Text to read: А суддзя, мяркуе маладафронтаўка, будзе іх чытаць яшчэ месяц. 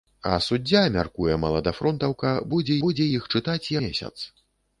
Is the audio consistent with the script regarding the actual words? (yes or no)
no